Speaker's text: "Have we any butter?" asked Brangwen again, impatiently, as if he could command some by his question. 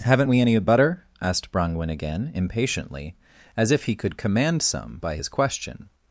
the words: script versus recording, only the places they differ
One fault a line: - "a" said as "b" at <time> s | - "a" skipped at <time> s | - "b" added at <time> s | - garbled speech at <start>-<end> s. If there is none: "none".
- "Have" said as "Haven't" at 0.0 s